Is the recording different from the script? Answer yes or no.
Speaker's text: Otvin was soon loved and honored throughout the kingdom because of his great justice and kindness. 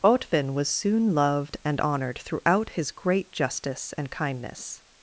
yes